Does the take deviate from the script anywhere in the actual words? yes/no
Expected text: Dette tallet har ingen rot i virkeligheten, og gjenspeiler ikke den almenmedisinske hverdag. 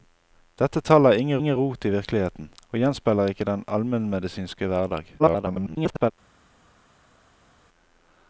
yes